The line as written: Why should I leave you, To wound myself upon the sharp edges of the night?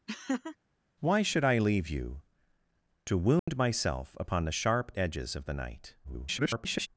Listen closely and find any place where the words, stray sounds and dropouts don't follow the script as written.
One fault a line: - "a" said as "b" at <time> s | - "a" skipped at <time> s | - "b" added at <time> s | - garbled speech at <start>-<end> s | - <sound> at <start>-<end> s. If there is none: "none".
- laugh at 0.1-0.6 s
- dropout at 3.4-3.5 s
- garbled speech at 6.0-6.9 s